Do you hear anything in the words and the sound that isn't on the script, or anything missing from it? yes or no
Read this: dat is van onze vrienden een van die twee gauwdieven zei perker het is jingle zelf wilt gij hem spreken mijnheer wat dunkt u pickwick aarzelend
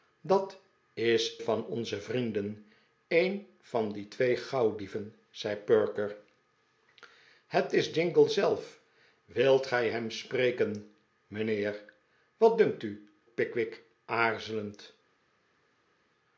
no